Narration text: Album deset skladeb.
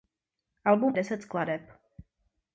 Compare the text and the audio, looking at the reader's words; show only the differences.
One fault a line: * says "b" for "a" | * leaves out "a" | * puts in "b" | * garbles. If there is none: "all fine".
all fine